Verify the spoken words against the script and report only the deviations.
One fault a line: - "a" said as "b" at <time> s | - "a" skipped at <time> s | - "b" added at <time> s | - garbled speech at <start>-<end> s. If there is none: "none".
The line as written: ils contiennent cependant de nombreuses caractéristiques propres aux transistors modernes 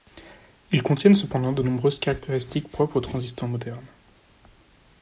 none